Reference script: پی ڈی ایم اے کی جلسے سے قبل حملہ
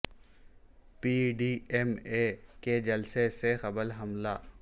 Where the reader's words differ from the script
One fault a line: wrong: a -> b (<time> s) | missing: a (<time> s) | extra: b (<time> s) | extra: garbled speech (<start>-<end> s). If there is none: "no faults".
wrong: کی -> کے (2.6 s)